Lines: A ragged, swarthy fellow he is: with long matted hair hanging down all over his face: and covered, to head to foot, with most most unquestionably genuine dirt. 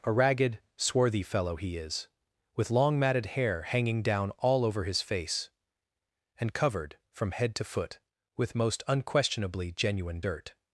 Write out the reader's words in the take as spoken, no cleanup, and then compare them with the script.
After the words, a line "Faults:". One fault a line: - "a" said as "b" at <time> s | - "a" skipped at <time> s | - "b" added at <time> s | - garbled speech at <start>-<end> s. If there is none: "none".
A ragged, swarthy fellow he is: with long matted hair hanging down all over his face: and covered, from head to foot, with most unquestionably genuine dirt.
Faults:
- "to" said as "from" at 7.1 s
- "most" skipped at 8.8 s